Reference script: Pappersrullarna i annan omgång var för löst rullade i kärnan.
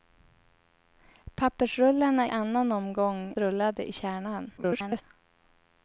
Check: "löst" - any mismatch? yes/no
yes